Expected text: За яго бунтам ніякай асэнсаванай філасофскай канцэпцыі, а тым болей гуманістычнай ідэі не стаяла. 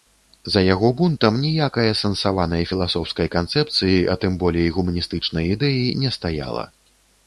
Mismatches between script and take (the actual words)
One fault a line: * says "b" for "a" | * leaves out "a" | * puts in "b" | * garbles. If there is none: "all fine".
all fine